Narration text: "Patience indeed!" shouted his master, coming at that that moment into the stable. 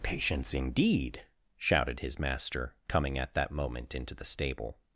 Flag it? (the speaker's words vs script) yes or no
yes